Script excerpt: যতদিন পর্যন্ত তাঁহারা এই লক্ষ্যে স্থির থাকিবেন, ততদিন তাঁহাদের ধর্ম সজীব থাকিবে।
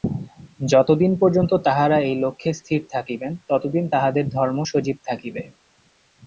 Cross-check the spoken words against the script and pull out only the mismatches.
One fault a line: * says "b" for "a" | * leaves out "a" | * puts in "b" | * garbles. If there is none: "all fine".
all fine